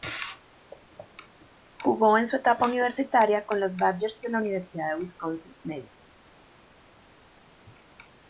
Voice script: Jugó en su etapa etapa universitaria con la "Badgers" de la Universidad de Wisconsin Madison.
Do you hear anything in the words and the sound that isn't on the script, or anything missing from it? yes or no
yes